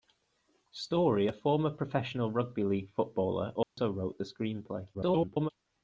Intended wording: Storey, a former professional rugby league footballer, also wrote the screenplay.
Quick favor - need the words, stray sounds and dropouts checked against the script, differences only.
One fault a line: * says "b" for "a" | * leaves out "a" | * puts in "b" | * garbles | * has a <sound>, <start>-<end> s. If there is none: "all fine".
* has a dropout, 3.6-3.8 s
* garbles